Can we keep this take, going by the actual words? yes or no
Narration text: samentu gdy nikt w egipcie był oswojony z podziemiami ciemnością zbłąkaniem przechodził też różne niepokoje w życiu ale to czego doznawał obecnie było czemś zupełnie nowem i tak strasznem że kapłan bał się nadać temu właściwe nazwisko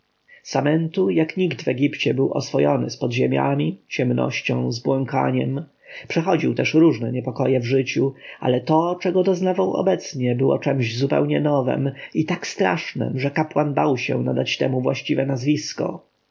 no